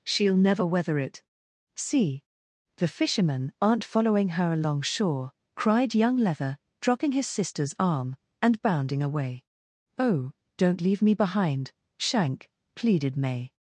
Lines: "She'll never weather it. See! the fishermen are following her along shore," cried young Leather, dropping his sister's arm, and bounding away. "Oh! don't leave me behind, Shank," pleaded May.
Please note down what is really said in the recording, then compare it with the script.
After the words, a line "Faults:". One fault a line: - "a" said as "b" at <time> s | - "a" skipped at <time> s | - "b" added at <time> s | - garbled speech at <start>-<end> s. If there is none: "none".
"She'll never weather it. See! the fishermen aren't following her along shore," cried young Leather, dropping his sister's arm, and bounding away. "Oh! don't leave me behind, Shank," pleaded May.
Faults:
- "are" said as "aren't" at 3.6 s